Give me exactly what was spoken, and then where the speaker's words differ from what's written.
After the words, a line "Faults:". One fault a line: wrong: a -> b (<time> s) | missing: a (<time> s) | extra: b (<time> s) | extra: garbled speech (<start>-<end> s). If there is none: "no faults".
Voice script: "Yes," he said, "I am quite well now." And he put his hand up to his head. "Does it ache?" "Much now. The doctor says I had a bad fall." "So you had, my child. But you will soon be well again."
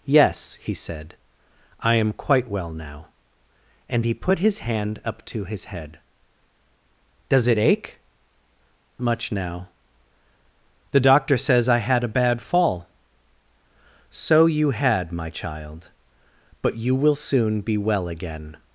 "Yes," he said, "I am quite well now." And he put his hand up to his head. "Does it ache?" "Much now. The doctor says I had a bad fall." "So you had, my child. But you will soon be well again."
Faults:
no faults